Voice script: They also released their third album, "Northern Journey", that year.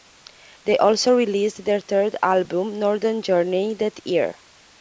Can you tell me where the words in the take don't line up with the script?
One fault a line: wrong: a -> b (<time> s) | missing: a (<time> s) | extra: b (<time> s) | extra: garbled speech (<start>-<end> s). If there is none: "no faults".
no faults